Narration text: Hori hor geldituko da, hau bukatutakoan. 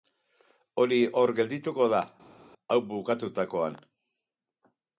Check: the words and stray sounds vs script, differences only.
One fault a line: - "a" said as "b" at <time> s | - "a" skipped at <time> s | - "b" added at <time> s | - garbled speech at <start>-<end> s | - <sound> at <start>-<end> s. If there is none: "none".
none